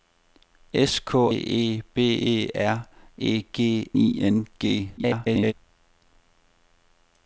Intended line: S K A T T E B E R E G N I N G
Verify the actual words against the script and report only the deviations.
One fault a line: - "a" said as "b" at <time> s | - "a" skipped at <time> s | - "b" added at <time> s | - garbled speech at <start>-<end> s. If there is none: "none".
- "A T T" skipped at 1.1 s
- "N" skipped at 3.9 s
- garbled speech at 5.0-5.5 s